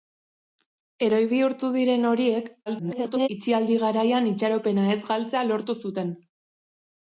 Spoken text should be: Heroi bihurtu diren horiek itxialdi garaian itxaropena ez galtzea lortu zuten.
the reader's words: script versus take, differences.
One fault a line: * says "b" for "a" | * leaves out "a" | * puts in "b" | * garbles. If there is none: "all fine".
* garbles